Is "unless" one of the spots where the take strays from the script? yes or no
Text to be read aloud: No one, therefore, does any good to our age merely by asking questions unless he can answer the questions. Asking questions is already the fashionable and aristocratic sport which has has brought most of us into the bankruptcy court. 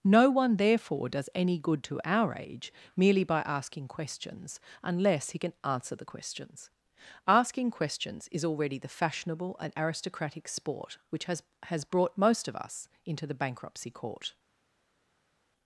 no